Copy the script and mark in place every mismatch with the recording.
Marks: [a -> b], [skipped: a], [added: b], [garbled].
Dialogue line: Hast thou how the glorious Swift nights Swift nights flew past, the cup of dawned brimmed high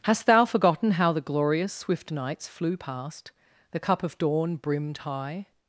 Hast thou [added: forgotten] how the glorious Swift nights [skipped: Swift nights] flew past, the cup of [dawned -> dawn] brimmed high